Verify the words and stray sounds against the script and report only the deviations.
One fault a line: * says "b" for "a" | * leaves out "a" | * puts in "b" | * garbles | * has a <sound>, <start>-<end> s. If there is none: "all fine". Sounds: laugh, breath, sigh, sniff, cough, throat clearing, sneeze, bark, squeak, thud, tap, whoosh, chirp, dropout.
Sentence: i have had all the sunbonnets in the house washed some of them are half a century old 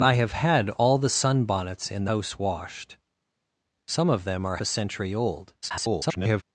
* leaves out "the"
* leaves out "half"
* garbles